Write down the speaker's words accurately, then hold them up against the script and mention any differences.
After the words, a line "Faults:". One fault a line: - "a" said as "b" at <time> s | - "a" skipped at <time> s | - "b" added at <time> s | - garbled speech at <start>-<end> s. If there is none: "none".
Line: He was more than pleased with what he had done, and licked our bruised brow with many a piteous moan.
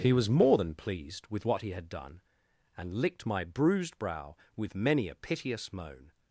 He was more than pleased with what he had done, and licked my bruised brow with many a piteous moan.
Faults:
- "our" said as "my" at 3.2 s